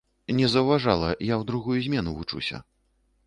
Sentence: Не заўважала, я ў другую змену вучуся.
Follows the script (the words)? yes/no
yes